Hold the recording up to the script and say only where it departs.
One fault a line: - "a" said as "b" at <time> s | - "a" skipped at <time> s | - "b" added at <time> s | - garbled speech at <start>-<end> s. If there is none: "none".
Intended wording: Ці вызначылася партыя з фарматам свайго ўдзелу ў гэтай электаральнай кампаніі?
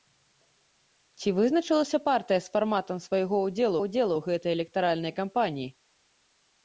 - "ўдзелу" added at 3.8 s